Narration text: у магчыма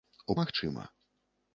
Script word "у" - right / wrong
right